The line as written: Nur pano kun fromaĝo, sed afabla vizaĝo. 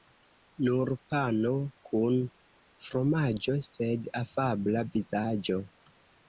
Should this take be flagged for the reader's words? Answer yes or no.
no